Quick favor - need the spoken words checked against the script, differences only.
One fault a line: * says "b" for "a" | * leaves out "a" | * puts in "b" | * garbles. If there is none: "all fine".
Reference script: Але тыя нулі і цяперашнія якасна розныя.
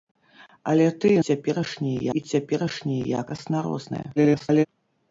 * says "цяперашнія" for "нулі"
* garbles